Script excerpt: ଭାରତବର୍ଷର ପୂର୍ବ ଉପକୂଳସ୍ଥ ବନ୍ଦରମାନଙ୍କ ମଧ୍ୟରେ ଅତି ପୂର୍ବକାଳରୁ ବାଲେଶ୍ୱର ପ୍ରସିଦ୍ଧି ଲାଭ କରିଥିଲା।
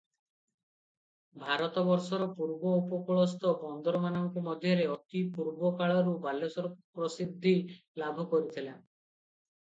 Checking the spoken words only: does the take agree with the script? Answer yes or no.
yes